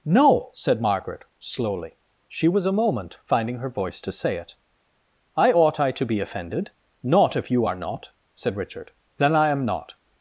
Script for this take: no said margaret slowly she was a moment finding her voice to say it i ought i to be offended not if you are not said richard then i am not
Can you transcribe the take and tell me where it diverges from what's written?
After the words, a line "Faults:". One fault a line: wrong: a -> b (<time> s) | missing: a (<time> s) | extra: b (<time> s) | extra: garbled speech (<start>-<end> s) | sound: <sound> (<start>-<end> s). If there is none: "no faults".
no said margaret slowly she was a moment finding her voice to say it i ought i to be offended not if you are not said richard then i am not
Faults:
no faults